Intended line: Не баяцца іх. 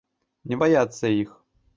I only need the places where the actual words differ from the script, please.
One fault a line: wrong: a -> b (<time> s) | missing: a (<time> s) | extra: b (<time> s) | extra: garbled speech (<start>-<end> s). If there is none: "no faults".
no faults